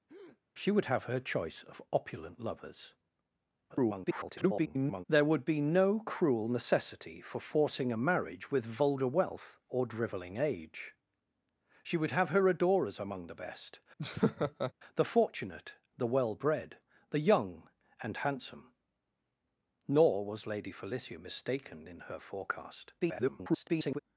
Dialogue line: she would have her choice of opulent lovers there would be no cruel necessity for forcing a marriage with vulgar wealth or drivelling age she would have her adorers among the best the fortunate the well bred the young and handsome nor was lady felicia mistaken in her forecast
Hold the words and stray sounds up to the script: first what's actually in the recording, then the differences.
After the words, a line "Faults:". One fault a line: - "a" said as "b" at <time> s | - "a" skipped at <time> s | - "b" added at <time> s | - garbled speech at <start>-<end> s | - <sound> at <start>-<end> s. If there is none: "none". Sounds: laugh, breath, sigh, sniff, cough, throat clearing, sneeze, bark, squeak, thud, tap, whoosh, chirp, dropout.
she would have her choice of opulent lovers [garbled] there would be no cruel necessity for forcing a marriage with vulgar wealth or drivelling age she would have her adorers among the best the fortunate the well bred the young and handsome nor was lady felicia mistaken in her forecast [garbled]
Faults:
- breath at 0.1-0.4 s
- garbled speech at 3.7-5.0 s
- laugh at 14.0-14.7 s
- garbled speech at 23.0-24.0 s